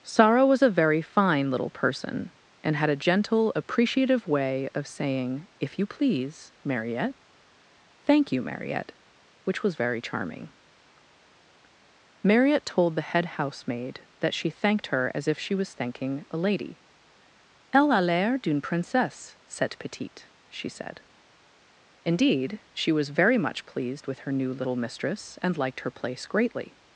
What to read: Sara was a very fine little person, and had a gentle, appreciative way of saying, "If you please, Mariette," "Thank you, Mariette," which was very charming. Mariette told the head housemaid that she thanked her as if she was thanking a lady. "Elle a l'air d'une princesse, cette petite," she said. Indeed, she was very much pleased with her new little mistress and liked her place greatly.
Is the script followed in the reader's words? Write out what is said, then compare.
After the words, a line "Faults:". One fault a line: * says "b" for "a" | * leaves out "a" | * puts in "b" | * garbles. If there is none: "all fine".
Sara was a very fine little person, and had a gentle, appreciative way of saying, "If you please, Mariette," "Thank you, Mariette," which was very charming. Mariette told the head housemaid that she thanked her as if she was thanking a lady. "Elle a l'air d'une princesse, cette petite," she said. Indeed, she was very much pleased with her new little mistress and liked her place greatly.
Faults:
all fine